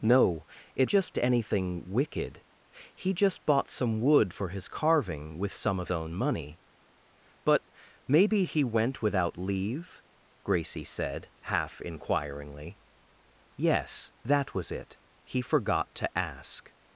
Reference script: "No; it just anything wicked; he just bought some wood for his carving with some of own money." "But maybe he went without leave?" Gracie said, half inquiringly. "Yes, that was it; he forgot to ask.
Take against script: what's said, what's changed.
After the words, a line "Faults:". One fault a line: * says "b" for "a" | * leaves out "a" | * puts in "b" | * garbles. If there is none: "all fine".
"No; it just anything wicked; he just bought some wood for his carving with some of own money." "But maybe he went without leave?" Gracie said, half inquiringly. "Yes, that was it; he forgot to ask.
Faults:
all fine